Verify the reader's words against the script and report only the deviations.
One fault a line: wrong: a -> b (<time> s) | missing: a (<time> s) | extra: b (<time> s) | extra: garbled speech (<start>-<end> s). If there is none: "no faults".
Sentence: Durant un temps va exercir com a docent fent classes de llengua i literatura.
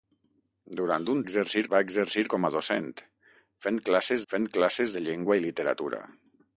wrong: temps -> exercir (1.2 s)
extra: fent classes (4.3 s)